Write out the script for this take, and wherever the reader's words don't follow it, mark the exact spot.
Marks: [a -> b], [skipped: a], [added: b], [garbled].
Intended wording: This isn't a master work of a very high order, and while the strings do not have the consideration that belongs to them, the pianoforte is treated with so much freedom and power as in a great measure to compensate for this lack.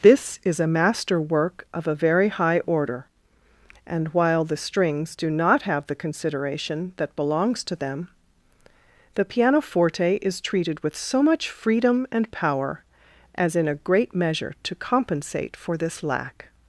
This [isn't -> is] a master work of a very high order, and while the strings do not have the consideration that belongs to them, the pianoforte is treated with so much freedom and power as in a great measure to compensate for this lack.